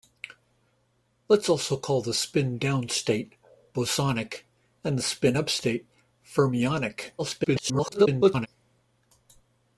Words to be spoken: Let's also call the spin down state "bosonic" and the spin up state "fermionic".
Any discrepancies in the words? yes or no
yes